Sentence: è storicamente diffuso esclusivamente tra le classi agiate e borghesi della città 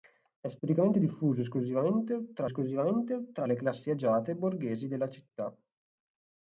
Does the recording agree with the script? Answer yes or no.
no